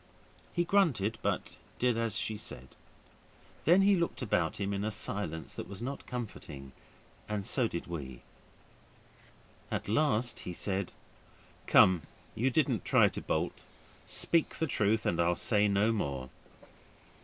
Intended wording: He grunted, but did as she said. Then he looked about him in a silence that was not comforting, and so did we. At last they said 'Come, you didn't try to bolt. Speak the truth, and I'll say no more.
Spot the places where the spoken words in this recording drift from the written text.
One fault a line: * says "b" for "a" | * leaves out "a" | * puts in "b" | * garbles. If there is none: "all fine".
* says "he" for "they"